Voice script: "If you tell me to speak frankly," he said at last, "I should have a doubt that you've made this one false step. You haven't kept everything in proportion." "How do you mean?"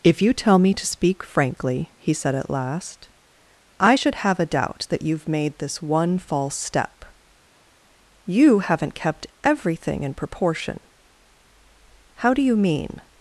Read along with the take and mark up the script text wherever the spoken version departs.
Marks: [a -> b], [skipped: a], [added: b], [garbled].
"If you tell me to speak frankly," he said at last, "I should have a doubt that you've made this one false step. You haven't kept everything in proportion." "How do you mean?"